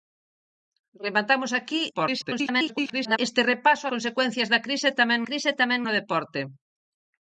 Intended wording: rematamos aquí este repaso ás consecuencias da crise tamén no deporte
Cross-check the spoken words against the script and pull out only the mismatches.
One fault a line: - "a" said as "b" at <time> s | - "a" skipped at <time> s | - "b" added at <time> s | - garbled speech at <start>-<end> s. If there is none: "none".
- garbled speech at 1.9-3.2 s
- "ás" skipped at 3.8 s
- "crise tamén" added at 5.3 s